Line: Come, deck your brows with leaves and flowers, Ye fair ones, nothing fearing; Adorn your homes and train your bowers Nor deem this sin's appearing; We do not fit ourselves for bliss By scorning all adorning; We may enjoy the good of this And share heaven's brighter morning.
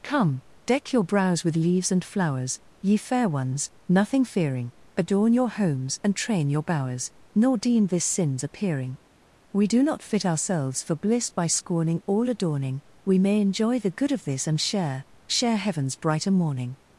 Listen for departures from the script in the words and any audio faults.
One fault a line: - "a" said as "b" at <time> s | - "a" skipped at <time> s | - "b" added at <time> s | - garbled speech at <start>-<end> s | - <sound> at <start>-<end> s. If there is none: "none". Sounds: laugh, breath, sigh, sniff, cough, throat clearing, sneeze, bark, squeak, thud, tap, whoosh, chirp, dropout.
- "share" added at 15.3 s